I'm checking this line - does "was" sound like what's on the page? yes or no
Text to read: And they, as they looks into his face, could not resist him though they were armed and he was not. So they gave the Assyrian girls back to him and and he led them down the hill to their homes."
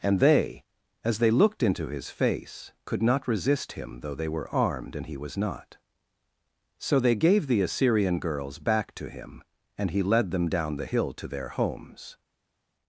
yes